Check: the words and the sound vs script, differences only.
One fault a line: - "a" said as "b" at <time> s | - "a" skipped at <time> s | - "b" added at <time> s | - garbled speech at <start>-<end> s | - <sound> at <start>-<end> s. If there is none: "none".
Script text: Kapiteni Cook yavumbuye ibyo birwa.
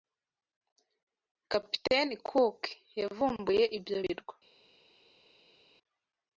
none